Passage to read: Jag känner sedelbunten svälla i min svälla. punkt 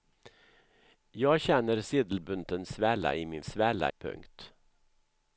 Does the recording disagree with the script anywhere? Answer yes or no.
no